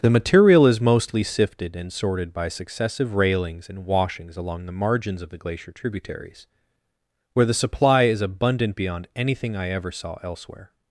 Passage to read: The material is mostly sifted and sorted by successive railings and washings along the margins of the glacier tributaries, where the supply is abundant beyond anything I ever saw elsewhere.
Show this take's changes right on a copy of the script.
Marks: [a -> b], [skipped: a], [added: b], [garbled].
The material is mostly sifted and sorted by successive railings and washings along the margins of the glacier tributaries, where the supply is abundant beyond anything I ever saw elsewhere.